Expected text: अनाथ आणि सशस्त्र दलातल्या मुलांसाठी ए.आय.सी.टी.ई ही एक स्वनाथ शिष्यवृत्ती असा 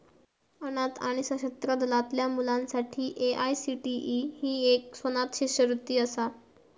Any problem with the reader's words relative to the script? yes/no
no